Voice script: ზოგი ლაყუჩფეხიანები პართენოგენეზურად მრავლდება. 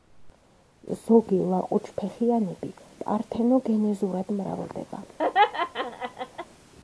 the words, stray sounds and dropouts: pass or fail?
fail